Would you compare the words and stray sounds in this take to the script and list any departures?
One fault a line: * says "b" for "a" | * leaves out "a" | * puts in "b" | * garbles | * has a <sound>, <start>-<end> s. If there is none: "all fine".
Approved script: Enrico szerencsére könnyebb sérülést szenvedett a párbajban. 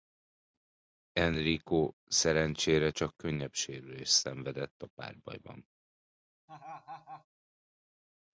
* puts in "csak"
* has a laugh, 6.5-7.3 s